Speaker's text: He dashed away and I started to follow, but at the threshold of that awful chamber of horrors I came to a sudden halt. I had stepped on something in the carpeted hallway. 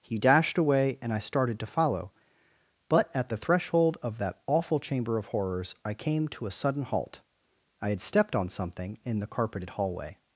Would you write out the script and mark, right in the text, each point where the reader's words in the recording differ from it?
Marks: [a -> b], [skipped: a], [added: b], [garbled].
He dashed away and I started to follow, but at the threshold of that awful chamber of horrors I came to a sudden halt. I had stepped on something in the carpeted hallway.